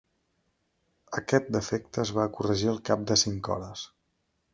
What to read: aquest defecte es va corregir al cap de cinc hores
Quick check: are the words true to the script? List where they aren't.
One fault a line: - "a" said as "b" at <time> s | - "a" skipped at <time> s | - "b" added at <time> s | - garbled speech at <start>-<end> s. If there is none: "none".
none